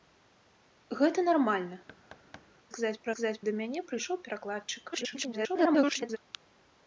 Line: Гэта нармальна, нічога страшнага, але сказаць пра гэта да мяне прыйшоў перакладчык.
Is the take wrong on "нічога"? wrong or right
wrong